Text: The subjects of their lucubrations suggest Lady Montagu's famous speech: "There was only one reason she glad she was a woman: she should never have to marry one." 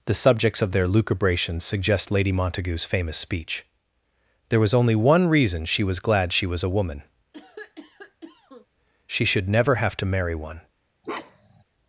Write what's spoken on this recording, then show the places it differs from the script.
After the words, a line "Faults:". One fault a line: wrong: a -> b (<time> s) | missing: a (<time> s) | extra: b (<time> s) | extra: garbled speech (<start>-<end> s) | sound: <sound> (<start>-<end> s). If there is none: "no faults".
The subjects of their lucubrations suggest Lady Montagu's famous speech: "There was only one reason she was glad she was a woman: she should never have to marry one."
Faults:
extra: was (5.8 s)
sound: cough (7.3-8.7 s)
sound: bark (11.0-11.6 s)